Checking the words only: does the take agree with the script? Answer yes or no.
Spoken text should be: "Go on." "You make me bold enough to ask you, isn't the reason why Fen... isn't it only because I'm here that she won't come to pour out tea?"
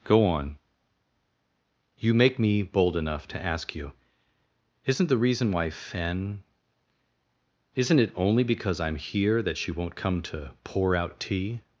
yes